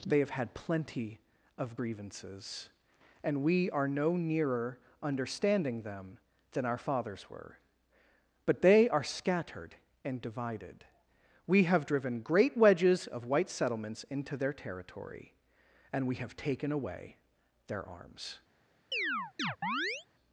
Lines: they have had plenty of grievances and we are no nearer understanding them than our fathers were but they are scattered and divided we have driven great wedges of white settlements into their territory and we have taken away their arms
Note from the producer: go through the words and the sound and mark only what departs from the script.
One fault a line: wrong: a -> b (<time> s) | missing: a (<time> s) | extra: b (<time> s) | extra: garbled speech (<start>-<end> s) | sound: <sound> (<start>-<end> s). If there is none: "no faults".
sound: chirp (18.9-20.1 s)